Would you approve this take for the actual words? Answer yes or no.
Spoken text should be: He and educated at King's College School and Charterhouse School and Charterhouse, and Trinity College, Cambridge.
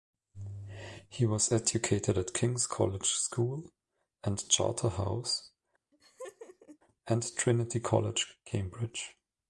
no